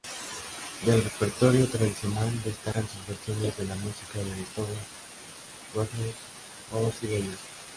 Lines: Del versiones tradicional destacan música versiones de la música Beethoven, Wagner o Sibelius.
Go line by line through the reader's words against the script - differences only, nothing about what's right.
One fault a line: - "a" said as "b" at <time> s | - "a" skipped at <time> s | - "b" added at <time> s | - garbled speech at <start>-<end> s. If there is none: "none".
- "versiones" said as "repertorio" at 1.0 s
- "música" said as "sus" at 2.9 s
- "de" added at 4.2 s